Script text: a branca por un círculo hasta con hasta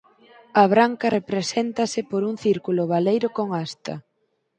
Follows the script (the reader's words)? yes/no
no